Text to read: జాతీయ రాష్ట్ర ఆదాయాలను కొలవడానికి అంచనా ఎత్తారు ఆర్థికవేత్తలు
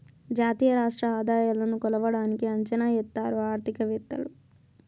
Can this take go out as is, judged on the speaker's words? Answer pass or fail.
pass